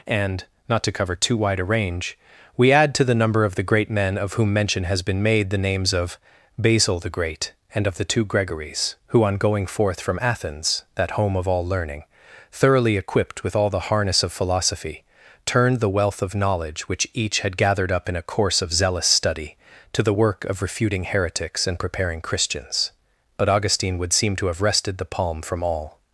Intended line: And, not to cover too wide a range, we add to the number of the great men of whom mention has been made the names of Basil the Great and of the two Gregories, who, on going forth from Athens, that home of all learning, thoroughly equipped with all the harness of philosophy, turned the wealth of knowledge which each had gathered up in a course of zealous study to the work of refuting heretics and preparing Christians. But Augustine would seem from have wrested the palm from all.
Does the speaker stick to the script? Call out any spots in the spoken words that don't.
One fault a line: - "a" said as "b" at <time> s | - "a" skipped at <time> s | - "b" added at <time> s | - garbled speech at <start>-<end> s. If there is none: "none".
- "from" said as "to" at 24.4 s